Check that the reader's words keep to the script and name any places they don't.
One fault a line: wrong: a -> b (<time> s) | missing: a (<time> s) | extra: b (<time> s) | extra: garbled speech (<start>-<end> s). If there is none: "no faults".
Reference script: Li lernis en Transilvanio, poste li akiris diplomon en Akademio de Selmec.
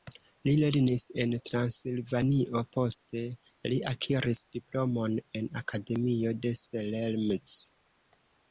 no faults